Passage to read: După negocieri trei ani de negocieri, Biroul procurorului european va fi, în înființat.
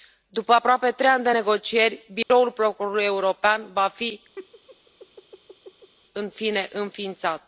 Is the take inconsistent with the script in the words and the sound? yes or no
yes